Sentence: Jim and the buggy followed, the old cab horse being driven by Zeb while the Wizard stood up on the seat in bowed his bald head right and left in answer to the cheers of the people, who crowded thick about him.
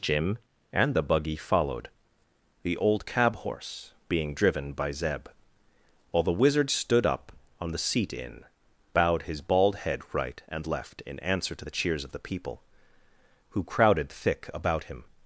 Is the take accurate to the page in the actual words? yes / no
yes